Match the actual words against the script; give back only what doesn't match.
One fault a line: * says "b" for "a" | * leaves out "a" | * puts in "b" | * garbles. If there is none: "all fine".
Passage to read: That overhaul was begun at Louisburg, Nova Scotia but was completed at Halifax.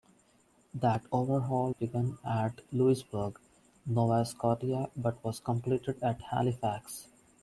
* leaves out "was"